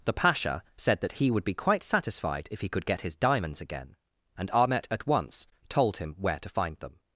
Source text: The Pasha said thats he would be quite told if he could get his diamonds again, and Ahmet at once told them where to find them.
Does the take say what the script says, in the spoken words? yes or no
no